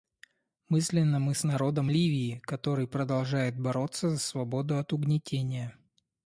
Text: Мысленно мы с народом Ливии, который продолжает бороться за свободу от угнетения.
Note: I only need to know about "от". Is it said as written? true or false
true